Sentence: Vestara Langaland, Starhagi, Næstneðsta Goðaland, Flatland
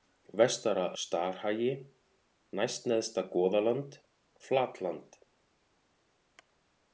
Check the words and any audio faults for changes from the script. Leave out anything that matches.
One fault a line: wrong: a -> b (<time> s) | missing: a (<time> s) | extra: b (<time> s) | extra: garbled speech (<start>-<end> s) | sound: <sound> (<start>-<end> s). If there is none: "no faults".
missing: Langaland (0.8 s)